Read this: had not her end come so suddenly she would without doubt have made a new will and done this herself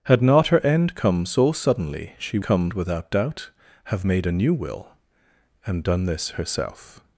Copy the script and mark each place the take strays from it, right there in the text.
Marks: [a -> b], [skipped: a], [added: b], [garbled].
had not her end come so suddenly she [would -> come] without doubt have made a new will and done this herself